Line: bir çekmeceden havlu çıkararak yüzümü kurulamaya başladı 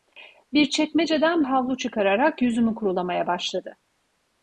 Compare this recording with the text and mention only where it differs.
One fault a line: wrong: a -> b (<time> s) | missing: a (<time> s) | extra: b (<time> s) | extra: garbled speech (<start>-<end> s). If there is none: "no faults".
no faults